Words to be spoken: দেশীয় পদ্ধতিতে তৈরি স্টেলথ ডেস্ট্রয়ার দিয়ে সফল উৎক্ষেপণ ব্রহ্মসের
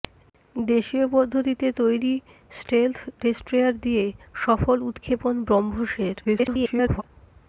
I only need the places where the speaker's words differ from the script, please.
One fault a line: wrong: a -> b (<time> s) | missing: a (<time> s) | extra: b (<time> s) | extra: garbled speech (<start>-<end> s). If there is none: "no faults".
extra: garbled speech (6.2-7.0 s)